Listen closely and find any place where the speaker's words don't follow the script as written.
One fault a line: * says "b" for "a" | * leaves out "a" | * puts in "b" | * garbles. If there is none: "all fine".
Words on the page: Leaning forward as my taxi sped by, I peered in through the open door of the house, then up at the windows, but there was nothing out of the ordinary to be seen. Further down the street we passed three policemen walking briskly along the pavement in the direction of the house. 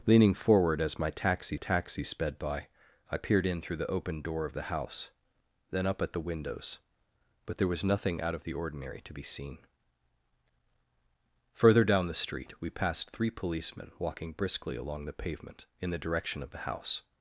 * puts in "taxi"